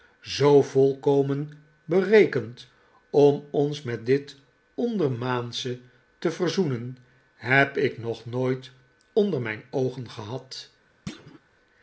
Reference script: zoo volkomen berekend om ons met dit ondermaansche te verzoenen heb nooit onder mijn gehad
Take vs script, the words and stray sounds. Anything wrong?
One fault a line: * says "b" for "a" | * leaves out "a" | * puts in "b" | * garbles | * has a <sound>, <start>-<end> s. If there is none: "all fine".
* puts in "ik nog"
* puts in "oogen"
* has a thud, 11.1-11.4 s